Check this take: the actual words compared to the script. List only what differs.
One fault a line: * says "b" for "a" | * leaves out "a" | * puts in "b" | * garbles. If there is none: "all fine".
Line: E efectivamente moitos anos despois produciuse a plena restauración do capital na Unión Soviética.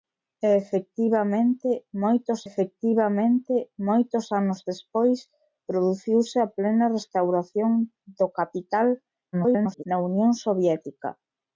* puts in "efectivamente moitos"
* garbles